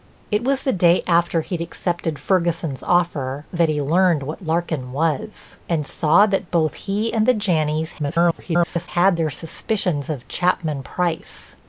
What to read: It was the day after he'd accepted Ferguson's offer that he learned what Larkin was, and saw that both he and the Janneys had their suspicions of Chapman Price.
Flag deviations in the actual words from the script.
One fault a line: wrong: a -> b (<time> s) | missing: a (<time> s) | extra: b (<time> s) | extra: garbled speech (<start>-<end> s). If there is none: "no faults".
extra: garbled speech (8.0-8.9 s)